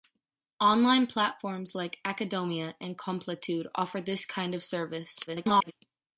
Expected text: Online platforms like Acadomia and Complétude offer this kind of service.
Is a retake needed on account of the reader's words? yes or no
yes